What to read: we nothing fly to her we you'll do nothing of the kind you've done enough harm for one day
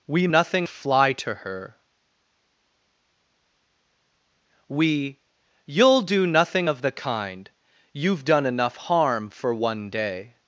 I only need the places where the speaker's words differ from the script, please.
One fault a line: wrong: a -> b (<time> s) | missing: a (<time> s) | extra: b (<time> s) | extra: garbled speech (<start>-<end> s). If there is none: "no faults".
no faults